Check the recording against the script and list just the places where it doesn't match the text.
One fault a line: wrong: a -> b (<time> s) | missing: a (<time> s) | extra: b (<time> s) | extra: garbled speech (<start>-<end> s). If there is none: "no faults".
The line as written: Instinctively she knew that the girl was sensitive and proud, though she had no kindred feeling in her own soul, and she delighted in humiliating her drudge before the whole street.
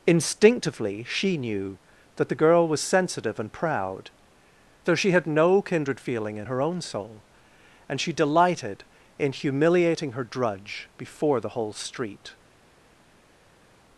no faults